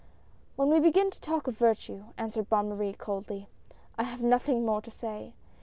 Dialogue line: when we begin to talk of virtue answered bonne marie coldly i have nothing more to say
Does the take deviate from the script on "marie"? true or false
false